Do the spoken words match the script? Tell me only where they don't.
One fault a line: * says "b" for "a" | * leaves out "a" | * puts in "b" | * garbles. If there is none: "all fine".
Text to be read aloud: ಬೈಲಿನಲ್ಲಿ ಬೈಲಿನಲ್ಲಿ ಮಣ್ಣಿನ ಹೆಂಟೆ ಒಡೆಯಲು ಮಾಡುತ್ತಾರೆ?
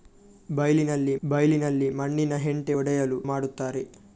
all fine